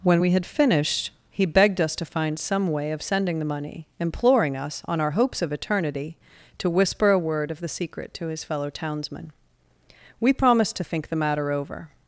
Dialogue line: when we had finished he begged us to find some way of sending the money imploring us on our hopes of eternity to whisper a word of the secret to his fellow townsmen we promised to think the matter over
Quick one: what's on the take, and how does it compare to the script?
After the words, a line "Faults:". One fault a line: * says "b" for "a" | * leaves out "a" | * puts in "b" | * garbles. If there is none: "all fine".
when we had finished he begged us to find some way of sending the money imploring us on our hopes of eternity to whisper a word of the secret to his fellow townsmen we promised to think the matter over
Faults:
all fine